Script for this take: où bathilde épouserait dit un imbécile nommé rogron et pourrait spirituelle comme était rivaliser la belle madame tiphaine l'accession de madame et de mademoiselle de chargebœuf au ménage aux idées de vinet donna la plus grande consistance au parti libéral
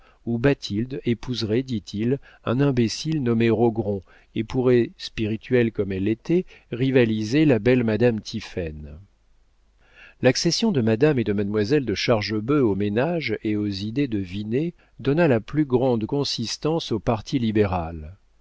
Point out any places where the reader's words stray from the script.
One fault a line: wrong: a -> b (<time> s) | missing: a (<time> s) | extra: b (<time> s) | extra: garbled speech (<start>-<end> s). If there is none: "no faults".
extra: il (1.9 s)
extra: elle (5.9 s)
extra: et (13.4 s)